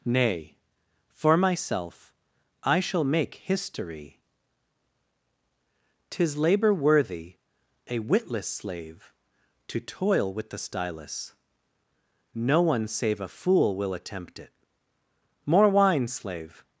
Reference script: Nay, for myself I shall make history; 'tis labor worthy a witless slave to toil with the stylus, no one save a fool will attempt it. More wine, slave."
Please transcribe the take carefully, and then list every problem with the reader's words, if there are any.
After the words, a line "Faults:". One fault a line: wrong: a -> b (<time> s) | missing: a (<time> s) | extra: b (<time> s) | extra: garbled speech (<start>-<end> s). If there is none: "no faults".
Nay, for myself I shall make history; 'tis labor worthy a witless slave to toil with the stylus, no one save a fool will attempt it. More wine, slave."
Faults:
no faults